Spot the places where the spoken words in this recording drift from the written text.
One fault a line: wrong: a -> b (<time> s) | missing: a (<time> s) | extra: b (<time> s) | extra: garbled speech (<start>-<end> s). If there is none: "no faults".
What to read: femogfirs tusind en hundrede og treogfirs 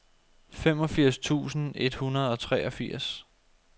wrong: en -> et (1.8 s)